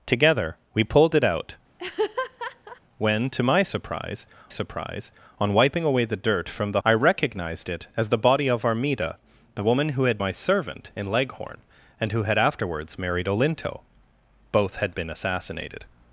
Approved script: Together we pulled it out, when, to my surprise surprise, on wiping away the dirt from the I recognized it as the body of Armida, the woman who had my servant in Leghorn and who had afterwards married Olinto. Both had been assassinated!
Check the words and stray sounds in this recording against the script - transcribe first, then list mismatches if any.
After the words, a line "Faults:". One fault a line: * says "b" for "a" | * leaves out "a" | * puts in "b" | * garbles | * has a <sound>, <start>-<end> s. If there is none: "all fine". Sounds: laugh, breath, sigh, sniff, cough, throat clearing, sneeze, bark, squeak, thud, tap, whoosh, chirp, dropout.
Together we pulled it out, when, to my surprise surprise, on wiping away the dirt from the I recognized it as the body of Armida, the woman who had my servant in Leghorn and who had afterwards married Olinto. Both had been assassinated!
Faults:
* has a laugh, 1.8-2.8 s